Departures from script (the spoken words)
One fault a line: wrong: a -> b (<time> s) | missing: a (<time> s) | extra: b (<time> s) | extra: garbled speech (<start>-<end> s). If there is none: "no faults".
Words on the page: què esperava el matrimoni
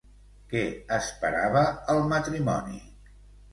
no faults